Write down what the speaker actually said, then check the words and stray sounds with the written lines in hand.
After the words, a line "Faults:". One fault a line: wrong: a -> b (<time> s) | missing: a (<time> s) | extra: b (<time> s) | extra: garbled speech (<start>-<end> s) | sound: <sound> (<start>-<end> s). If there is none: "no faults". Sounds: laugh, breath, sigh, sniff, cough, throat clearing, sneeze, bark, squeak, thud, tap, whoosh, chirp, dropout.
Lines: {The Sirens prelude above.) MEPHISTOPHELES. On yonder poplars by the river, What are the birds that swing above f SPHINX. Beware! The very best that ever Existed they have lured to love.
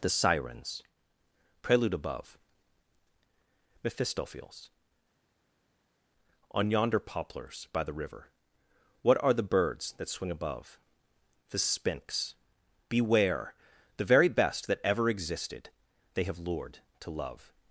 {The Sirens prelude above.) MEPHISTOPHELES. On yonder poplars by the river, What are the birds that swing above the SPHINX. Beware! The very best that ever Existed they have lured to love.
Faults:
wrong: f -> the (11.5 s)